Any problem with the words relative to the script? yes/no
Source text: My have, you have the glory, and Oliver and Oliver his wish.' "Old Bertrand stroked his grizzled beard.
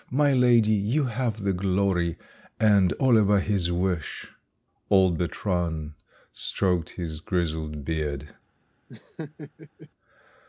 yes